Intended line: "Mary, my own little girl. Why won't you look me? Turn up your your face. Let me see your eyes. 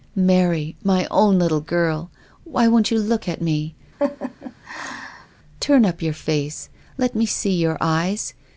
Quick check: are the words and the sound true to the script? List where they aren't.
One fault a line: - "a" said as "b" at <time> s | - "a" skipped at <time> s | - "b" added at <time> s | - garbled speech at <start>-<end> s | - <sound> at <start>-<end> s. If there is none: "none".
- "at" added at 3.3 s
- laugh at 4.0-5.3 s
- "your" skipped at 6.1 s